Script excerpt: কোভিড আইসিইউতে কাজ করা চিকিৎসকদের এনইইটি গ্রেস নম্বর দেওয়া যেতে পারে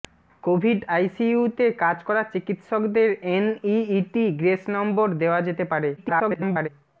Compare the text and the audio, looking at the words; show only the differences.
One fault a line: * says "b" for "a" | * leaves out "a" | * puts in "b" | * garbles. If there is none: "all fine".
* garbles